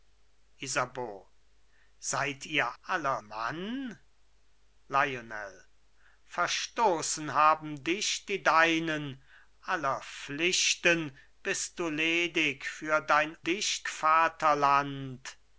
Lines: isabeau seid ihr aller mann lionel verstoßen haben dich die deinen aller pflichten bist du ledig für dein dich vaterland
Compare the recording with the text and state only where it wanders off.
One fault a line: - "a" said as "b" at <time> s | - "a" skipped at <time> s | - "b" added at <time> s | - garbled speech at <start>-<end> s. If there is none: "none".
none